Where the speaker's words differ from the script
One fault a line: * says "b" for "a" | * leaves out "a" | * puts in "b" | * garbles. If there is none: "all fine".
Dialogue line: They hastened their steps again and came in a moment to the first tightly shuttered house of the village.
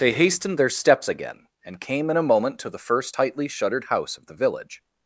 all fine